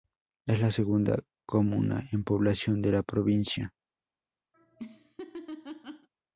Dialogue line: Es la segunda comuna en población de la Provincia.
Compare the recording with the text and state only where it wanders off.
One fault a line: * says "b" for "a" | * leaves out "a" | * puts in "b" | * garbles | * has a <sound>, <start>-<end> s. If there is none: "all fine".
* has a laugh, 4.5-6.1 s